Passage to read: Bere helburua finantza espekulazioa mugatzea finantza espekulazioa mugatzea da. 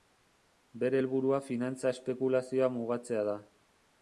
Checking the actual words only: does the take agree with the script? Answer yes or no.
no